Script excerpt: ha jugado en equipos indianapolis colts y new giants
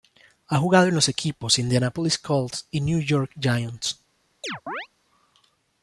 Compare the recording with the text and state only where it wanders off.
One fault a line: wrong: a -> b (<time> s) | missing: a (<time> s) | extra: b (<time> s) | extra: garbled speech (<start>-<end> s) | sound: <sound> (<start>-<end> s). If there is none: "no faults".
extra: los (0.9 s)
extra: york (3.0 s)
sound: chirp (4.4-4.9 s)